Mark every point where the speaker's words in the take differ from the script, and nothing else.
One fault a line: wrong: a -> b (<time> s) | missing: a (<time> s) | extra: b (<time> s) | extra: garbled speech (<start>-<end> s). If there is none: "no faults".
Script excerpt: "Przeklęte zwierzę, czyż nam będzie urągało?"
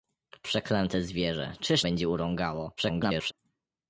missing: nam (1.9 s)
extra: garbled speech (2.8-3.3 s)